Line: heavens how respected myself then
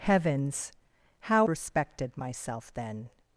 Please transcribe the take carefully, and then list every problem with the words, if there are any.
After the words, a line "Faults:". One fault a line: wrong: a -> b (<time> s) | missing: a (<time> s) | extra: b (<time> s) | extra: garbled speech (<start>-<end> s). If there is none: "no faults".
heavens how respected myself then
Faults:
no faults